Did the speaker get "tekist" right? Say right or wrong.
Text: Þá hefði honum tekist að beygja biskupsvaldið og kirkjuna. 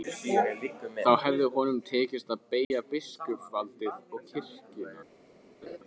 right